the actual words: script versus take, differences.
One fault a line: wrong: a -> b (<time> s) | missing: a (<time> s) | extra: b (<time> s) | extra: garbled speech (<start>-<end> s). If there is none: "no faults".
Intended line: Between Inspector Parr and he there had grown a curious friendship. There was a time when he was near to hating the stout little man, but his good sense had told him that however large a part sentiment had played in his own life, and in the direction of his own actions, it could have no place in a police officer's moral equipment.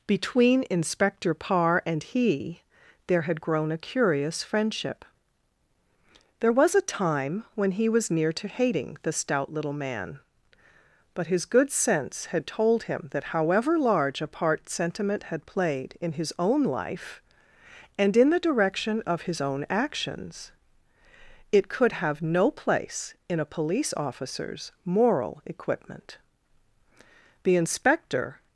extra: The inspector (27.4 s)